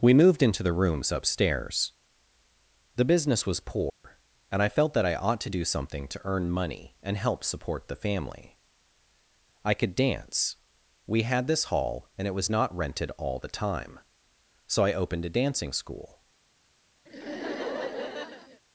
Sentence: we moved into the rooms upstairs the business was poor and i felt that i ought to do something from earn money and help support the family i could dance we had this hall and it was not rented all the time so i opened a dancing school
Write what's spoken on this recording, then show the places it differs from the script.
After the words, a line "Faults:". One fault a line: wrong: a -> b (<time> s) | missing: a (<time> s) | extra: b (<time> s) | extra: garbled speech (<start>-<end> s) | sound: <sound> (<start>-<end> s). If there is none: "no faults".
we moved into the rooms upstairs the business was poor and i felt that i ought to do something to earn money and help support the family i could dance we had this hall and it was not rented all the time so i opened a dancing school
Faults:
sound: dropout (3.9-4.0 s)
wrong: from -> to (6.1 s)
sound: laugh (17.1-18.6 s)